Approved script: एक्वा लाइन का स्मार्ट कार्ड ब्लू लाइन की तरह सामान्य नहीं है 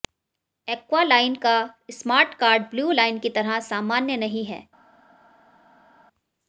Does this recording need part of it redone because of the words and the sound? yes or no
no